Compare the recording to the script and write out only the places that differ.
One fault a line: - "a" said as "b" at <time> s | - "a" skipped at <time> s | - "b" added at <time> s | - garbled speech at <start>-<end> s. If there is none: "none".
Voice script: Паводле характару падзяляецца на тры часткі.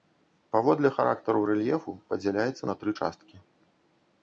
- "рэльефу" added at 1.5 s